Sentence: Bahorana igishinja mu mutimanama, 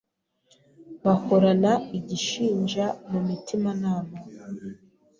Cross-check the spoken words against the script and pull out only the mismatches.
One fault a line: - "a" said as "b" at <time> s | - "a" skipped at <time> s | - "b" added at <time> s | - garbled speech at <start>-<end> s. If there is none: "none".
none